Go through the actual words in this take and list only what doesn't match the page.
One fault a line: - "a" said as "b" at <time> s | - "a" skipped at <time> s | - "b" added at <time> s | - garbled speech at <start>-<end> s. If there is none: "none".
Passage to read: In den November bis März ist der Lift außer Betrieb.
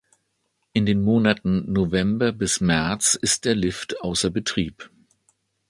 - "Monaten" added at 1.0 s